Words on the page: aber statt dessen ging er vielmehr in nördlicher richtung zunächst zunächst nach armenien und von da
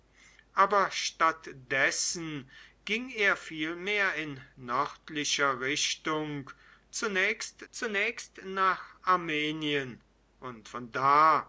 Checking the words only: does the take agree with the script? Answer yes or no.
yes